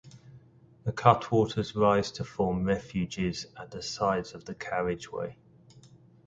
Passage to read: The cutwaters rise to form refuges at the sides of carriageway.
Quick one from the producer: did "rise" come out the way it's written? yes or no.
yes